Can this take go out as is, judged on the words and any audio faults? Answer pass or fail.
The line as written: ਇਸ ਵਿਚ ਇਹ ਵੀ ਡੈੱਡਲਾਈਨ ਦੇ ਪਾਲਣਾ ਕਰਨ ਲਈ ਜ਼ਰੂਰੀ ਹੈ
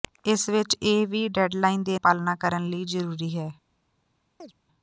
fail